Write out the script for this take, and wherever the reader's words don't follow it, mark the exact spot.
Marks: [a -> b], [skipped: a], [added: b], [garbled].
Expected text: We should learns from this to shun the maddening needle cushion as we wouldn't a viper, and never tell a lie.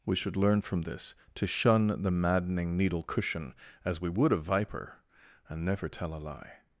We should [learns -> learn] from this to shun the maddening needle cushion as we [wouldn't -> would] a viper, and never tell a lie.